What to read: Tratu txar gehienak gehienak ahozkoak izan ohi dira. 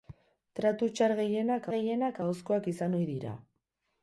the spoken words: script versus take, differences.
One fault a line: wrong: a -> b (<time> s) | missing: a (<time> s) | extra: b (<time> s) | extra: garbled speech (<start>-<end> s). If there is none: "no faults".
no faults